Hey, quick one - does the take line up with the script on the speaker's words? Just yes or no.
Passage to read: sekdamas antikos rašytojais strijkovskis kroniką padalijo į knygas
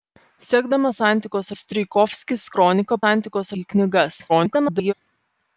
no